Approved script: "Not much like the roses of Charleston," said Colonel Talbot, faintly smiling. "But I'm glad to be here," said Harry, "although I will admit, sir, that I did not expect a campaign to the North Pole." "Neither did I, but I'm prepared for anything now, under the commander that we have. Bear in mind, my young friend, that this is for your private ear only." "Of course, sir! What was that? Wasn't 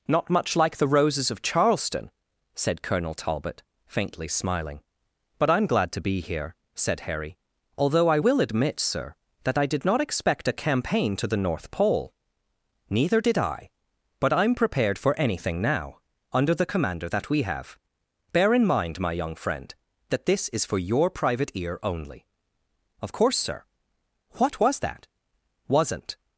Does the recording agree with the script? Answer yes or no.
yes